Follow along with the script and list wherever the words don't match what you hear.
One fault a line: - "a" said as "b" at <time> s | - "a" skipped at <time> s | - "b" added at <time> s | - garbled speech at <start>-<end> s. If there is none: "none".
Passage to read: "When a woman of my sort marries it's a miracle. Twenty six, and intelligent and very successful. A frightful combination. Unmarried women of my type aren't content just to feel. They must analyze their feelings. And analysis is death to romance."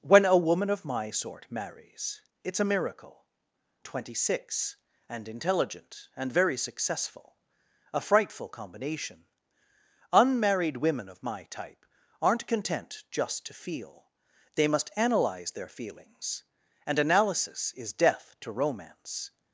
none